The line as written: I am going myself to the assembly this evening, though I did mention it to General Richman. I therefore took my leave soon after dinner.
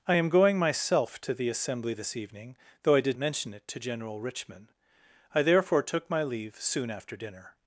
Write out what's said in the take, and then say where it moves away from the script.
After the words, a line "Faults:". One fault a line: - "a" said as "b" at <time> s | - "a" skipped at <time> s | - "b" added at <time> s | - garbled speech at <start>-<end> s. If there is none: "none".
I am going myself to the assembly this evening, though I did mention it to General Richman. I therefore took my leave soon after dinner.
Faults:
none